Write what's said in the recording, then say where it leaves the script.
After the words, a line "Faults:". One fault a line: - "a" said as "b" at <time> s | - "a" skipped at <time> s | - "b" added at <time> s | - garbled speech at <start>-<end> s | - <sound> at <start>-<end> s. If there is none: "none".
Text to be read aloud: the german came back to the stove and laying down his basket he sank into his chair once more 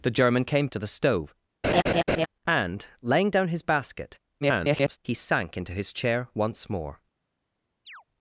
the german came to the stove and laying down his basket [garbled] he sank into his chair once more
Faults:
- "back" skipped at 0.7 s
- laugh at 1.6-2.3 s
- garbled speech at 4.4-5.0 s
- chirp at 7.9-8.0 s